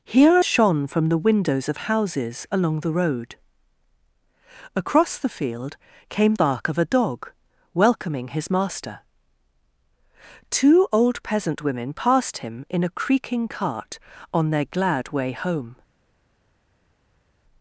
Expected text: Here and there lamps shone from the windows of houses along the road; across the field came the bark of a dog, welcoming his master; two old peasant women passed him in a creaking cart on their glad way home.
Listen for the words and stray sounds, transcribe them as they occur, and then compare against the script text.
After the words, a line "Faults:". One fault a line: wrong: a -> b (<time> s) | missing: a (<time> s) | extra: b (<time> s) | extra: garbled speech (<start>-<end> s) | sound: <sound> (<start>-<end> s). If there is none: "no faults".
Here shone from the windows of houses along the road; across the field came bark of a dog, welcoming his master; two old peasant women passed him in a creaking cart on their glad way home.
Faults:
missing: and there lamps (0.4 s)
missing: the (6.3 s)